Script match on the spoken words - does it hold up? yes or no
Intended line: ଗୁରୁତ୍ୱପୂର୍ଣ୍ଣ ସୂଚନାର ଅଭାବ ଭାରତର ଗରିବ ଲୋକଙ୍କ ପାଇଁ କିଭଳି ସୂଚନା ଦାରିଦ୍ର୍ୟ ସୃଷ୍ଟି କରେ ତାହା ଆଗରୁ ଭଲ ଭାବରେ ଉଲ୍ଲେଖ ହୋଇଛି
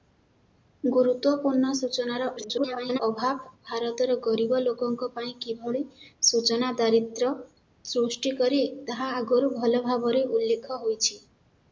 no